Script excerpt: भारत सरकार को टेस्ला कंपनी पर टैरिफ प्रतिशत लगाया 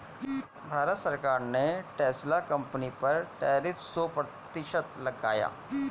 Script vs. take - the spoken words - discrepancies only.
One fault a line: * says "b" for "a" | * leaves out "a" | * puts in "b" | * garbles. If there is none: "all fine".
* says "ने" for "को"
* puts in "सो"